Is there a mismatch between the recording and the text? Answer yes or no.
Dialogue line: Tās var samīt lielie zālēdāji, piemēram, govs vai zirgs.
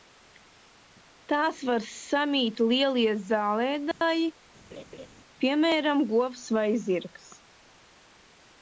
no